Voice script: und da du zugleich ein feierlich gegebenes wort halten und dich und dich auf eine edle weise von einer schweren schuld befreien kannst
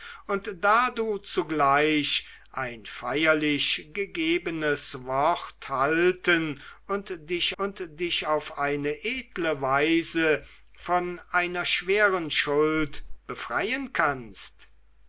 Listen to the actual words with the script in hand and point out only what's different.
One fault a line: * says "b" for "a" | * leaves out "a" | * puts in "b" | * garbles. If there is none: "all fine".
all fine